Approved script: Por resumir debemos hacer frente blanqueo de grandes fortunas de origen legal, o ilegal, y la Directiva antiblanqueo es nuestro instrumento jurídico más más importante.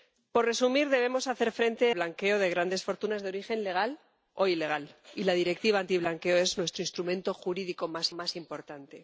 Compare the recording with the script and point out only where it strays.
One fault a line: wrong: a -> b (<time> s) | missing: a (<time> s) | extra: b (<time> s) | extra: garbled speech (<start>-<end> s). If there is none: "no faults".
no faults